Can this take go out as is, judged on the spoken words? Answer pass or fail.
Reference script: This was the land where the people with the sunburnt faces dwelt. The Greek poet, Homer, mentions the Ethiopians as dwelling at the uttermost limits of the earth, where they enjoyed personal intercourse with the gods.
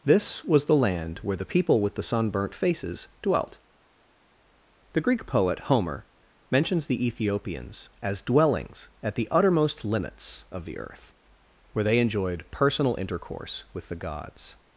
fail